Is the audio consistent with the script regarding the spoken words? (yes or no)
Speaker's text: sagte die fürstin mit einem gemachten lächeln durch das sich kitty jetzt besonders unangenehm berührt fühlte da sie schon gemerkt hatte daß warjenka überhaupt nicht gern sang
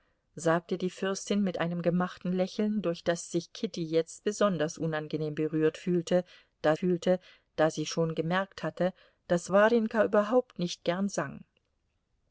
no